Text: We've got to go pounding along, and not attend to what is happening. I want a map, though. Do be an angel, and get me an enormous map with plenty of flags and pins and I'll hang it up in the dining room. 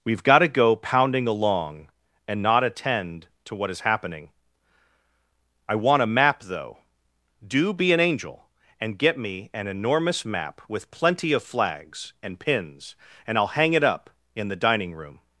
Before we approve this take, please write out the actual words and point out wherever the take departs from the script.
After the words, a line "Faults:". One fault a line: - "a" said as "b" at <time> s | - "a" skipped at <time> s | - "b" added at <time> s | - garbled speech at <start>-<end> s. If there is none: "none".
We've got to go pounding along, and not attend to what is happening. I want a map, though. Do be an angel, and get me an enormous map with plenty of flags and pins and I'll hang it up in the dining room.
Faults:
none